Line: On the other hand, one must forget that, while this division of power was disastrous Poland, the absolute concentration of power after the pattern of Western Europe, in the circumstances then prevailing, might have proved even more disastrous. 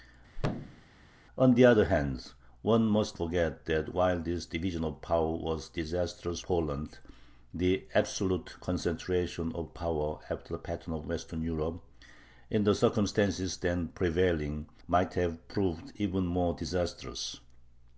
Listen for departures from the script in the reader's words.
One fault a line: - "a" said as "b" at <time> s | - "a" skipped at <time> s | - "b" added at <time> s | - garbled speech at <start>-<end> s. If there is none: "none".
none